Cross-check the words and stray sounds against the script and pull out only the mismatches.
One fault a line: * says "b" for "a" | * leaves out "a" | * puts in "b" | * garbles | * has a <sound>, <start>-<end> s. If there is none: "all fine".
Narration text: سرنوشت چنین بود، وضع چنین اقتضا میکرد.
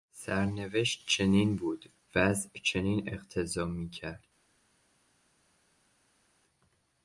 all fine